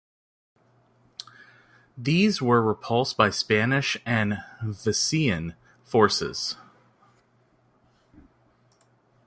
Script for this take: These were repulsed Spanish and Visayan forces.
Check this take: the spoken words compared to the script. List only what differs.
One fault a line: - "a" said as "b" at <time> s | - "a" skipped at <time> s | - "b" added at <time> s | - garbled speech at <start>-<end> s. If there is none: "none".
- "by" added at 3.2 s